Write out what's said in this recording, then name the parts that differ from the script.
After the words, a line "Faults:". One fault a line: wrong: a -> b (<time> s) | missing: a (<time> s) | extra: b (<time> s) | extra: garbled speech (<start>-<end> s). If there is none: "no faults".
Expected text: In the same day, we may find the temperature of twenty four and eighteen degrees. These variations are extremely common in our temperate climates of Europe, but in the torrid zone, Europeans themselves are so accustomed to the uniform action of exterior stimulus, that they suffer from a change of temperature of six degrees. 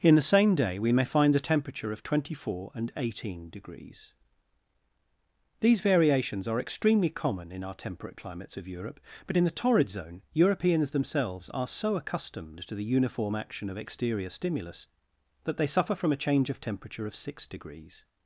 In the same day, we may find the temperature of twenty four and eighteen degrees. These variations are extremely common in our temperate climates of Europe, but in the torrid zone, Europeans themselves are so accustomed to the uniform action of exterior stimulus, that they suffer from a change of temperature of six degrees.
Faults:
no faults